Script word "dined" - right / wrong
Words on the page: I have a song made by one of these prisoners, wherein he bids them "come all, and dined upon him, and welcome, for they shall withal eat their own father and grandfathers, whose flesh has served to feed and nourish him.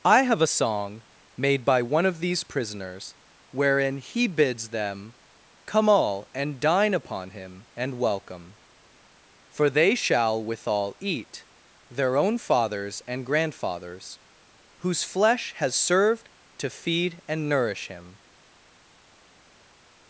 wrong